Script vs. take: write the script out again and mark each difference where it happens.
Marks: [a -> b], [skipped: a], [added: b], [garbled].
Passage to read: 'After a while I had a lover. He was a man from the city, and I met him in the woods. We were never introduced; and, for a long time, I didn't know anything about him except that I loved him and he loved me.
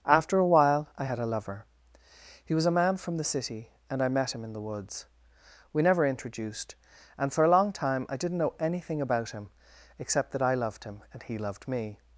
'After a while I had a lover. He was a man from the city, and I met him in the woods. We [skipped: were] never introduced; and, for a long time, I didn't know anything about him except that I loved him and he loved me.